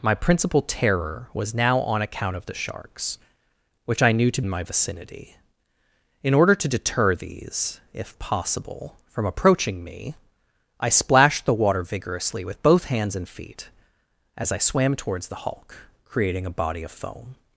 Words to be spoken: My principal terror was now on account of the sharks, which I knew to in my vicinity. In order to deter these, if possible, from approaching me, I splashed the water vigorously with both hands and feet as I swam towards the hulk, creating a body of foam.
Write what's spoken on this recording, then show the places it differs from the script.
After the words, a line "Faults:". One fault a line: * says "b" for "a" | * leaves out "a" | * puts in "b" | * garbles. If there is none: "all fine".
My principal terror was now on account of the sharks, which I knew to in my vicinity. In order to deter these, if possible, from approaching me, I splashed the water vigorously with both hands and feet as I swam towards the hulk, creating a body of foam.
Faults:
all fine